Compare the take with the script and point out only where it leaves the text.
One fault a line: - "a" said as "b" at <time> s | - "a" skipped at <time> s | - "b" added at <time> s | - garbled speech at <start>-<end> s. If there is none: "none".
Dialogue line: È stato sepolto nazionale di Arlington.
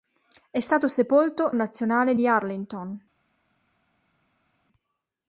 none